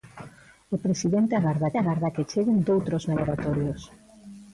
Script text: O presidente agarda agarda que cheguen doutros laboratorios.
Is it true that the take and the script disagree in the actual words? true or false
false